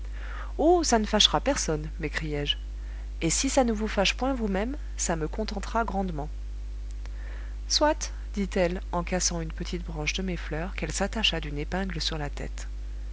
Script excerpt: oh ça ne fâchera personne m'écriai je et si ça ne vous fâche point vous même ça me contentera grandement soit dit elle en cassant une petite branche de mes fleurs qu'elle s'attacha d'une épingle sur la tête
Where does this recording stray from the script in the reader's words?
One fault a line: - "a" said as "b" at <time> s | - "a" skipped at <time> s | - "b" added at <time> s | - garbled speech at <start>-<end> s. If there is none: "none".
none